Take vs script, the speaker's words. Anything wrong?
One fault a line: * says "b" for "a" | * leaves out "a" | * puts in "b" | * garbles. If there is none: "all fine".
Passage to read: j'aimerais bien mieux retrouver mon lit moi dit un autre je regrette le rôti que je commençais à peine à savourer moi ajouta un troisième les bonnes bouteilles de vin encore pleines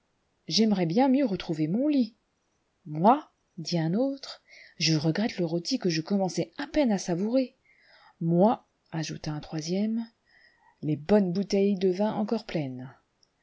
all fine